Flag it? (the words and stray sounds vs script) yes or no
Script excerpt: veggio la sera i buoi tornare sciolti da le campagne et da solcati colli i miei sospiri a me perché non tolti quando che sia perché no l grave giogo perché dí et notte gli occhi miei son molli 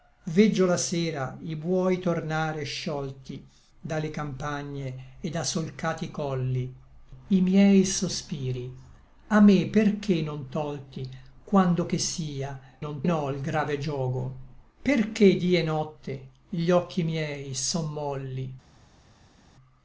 yes